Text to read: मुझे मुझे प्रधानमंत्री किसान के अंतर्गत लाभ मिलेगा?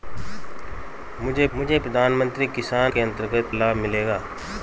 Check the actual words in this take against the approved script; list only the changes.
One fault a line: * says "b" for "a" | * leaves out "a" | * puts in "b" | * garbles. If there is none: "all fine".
all fine